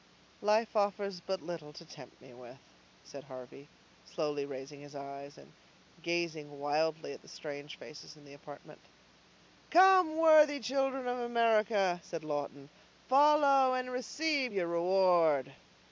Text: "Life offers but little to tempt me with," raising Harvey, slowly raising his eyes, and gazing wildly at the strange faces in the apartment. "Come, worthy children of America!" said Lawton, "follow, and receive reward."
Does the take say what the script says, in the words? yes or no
no